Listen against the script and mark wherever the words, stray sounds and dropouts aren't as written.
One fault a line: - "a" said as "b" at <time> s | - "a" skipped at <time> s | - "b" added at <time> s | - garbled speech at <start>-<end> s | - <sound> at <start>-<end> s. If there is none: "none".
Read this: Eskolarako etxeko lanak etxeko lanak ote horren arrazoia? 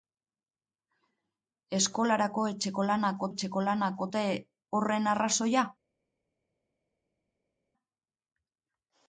none